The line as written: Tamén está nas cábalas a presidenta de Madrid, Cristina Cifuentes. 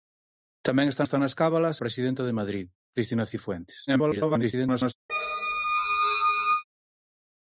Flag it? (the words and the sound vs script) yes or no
yes